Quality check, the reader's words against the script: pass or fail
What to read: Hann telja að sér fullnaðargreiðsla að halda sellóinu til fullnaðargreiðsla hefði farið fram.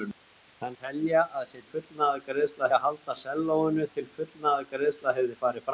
pass